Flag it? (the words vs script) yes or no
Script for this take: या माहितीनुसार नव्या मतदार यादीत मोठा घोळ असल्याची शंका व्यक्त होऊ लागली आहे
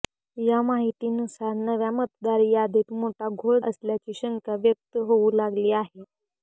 no